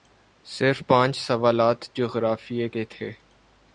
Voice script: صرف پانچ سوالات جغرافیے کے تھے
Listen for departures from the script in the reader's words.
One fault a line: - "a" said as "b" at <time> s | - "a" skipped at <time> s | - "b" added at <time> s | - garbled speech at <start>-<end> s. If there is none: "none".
none